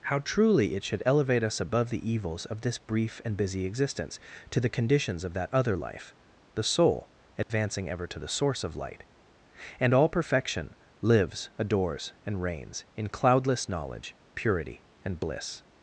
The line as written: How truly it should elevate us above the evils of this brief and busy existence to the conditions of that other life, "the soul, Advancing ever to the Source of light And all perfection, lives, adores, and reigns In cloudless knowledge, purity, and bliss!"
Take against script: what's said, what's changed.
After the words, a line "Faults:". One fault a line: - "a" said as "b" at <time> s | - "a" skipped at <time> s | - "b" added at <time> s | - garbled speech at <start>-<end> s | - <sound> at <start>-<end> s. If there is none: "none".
How truly it should elevate us above the evils of this brief and busy existence to the conditions of that other life, "the soul, Advancing ever to the Source of light And all perfection, lives, adores, and reigns In cloudless knowledge, purity, and bliss!"
Faults:
- dropout at 7.4-7.5 s